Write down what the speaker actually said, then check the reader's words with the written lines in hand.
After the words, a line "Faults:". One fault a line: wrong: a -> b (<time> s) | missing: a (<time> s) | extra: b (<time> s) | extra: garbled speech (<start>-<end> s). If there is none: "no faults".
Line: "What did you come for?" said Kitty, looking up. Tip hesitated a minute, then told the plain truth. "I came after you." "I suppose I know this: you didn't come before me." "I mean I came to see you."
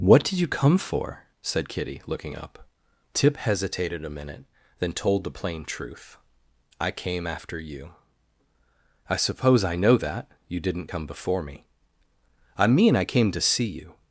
"What did you come for?" said Kitty, looking up. Tip hesitated a minute, then told the plain truth. "I came after you." "I suppose I know that: you didn't come before me." "I mean I came to see you."
Faults:
wrong: this -> that (10.0 s)